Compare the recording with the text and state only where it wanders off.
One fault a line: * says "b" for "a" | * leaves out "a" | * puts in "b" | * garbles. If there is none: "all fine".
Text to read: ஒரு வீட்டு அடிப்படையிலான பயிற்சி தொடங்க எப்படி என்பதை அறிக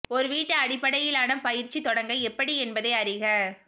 all fine